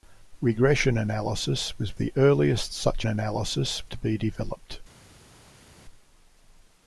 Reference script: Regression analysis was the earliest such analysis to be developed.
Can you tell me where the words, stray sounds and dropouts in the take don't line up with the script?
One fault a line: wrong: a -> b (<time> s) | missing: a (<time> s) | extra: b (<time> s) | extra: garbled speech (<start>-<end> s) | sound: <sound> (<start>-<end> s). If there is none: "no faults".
no faults